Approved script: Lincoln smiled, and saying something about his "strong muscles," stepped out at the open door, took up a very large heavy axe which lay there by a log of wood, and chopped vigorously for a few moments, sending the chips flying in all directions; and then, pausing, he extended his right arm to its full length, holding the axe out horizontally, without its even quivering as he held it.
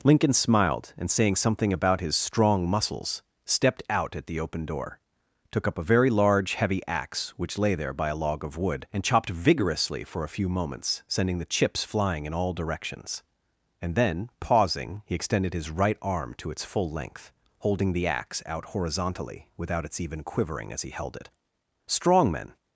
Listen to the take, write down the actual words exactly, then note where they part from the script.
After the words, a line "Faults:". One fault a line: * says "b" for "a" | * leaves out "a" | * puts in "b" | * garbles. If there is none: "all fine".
Lincoln smiled, and saying something about his "strong muscles," stepped out at the open door, took up a very large heavy axe which lay there by a log of wood, and chopped vigorously for a few moments, sending the chips flying in all directions; and then, pausing, he extended his right arm to its full length, holding the axe out horizontally, without its even quivering as he held it. Strong men
Faults:
* puts in "Strong men"